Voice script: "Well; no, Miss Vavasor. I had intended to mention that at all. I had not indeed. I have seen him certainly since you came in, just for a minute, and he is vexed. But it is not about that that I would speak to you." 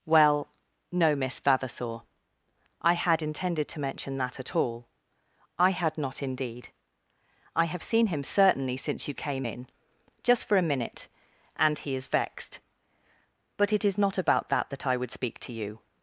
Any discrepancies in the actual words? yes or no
no